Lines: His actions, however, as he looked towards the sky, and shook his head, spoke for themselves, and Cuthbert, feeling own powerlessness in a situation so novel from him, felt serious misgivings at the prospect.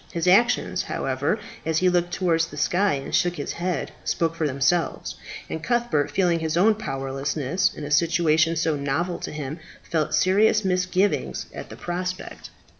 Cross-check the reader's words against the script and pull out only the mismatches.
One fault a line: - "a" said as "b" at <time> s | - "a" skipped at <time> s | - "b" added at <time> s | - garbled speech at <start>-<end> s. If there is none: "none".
- "his" added at 6.4 s
- "from" said as "to" at 9.2 s